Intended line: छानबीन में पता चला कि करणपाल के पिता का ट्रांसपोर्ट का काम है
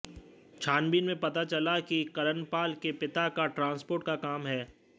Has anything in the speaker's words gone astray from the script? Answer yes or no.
no